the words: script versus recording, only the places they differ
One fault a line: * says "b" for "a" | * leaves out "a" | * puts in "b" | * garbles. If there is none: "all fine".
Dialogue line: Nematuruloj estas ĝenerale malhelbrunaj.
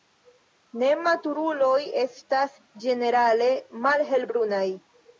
all fine